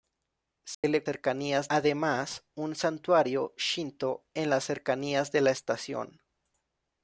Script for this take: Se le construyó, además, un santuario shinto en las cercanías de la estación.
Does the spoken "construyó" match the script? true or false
false